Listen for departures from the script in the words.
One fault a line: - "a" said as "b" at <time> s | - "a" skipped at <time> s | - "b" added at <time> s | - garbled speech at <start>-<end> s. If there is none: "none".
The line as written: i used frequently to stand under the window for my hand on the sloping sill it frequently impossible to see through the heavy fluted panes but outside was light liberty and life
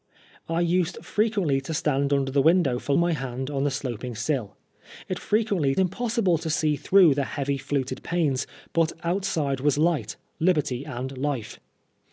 none